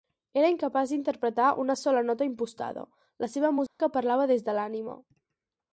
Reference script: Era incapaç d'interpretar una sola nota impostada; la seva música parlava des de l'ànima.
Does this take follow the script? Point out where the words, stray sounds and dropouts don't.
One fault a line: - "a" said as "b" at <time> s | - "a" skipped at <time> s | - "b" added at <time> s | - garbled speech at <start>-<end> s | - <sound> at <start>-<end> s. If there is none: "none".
- dropout at 3.7-3.8 s